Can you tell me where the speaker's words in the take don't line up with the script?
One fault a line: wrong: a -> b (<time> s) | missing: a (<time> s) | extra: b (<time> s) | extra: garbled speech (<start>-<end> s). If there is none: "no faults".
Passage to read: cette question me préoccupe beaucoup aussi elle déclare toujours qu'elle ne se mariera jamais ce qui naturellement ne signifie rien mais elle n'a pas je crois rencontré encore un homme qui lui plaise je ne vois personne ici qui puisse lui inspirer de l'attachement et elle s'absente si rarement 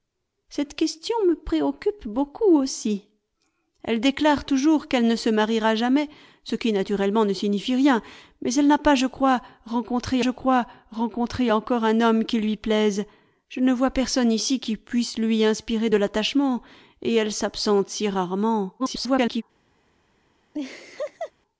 extra: je crois rencontré (10.2 s)
extra: garbled speech (18.8-19.4 s)